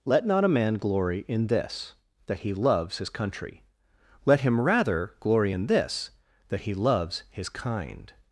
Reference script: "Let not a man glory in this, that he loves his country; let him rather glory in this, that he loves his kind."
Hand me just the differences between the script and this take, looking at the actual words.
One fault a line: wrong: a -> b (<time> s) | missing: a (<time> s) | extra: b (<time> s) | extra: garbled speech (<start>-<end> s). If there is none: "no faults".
no faults